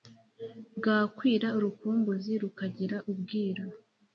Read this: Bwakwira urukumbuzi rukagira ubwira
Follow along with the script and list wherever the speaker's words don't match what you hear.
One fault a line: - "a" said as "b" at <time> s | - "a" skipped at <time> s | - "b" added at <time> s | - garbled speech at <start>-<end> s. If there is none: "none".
none